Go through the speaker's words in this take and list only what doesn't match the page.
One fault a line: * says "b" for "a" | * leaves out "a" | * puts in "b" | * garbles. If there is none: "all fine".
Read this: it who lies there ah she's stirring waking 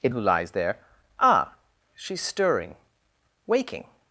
all fine